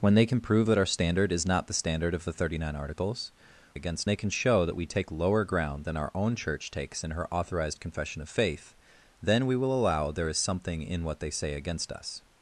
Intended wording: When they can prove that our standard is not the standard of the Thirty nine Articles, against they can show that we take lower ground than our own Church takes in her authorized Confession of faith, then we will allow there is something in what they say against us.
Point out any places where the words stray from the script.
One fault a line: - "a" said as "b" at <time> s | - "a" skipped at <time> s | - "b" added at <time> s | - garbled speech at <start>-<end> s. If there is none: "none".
none